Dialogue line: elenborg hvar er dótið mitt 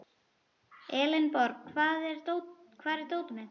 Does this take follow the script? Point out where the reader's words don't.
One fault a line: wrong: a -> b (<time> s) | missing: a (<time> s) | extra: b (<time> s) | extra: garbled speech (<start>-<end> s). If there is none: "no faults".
no faults